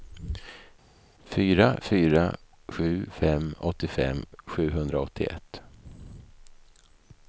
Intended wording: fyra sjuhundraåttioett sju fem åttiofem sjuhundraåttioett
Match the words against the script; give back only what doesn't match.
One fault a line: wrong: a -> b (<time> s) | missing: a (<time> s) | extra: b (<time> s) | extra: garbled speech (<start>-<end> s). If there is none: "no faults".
wrong: sjuhundraåttioett -> fyra (1.8 s)